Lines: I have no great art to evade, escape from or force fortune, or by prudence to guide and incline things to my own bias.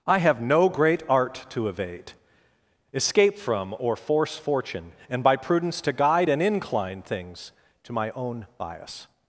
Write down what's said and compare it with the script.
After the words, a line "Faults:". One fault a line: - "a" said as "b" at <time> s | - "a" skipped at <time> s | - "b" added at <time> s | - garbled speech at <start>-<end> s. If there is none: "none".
I have no great art to evade, escape from or force fortune, and by prudence to guide and incline things to my own bias.
Faults:
- "or" said as "and" at 5.1 s